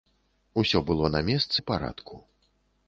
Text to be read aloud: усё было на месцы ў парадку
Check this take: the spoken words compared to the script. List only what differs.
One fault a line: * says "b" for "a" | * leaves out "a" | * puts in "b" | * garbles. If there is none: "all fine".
all fine